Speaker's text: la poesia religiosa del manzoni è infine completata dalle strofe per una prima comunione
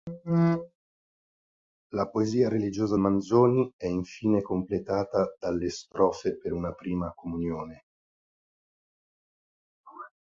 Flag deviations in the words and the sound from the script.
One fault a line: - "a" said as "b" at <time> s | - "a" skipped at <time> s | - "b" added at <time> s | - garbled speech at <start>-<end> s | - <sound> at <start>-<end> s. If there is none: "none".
- "del" skipped at 3.0 s